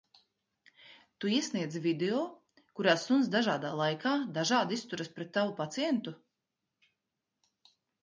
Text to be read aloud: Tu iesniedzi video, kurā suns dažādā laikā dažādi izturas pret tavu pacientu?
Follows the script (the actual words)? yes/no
yes